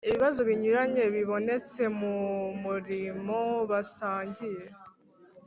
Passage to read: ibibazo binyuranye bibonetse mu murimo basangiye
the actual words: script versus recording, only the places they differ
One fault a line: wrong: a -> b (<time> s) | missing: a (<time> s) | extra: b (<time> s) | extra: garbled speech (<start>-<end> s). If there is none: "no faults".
no faults